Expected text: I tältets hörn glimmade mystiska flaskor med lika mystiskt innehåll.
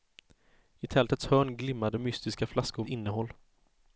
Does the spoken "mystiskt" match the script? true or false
false